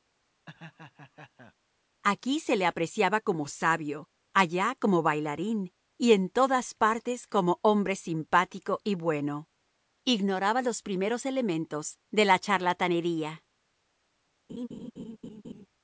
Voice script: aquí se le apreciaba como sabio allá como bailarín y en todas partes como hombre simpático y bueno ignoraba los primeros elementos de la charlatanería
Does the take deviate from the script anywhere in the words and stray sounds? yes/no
yes